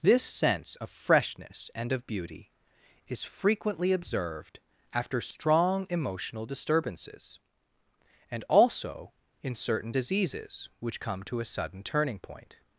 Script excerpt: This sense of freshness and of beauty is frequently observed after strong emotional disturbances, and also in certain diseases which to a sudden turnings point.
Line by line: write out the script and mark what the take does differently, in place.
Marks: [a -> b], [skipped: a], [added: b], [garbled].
This sense of freshness and of beauty is frequently observed after strong emotional disturbances, and also in certain diseases which [added: come] to a sudden [turnings -> turning] point.